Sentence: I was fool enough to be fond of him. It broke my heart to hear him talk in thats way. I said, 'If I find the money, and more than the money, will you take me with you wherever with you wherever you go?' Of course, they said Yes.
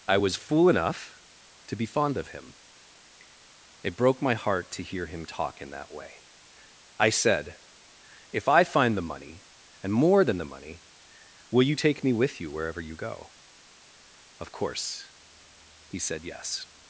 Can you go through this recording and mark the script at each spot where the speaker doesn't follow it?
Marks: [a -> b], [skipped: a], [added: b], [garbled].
I was fool enough to be fond of him. It broke my heart to hear him talk in [thats -> that] way. I said, 'If I find the money, and more than the money, will you take me with you wherever [skipped: with] you [skipped: wherever you] go?' Of course, [they -> he] said Yes.